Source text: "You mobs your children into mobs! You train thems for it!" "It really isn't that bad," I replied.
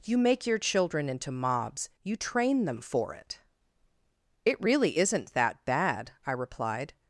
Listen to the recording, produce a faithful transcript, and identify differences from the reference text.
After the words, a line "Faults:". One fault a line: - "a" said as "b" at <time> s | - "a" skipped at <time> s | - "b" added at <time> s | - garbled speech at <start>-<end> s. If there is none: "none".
"You make your children into mobs! You train them for it!" "It really isn't that bad," I replied.
Faults:
- "mobs" said as "make" at 0.2 s
- "thems" said as "them" at 2.7 s